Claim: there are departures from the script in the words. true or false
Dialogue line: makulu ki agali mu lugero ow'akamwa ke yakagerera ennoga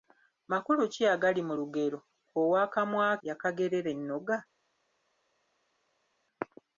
true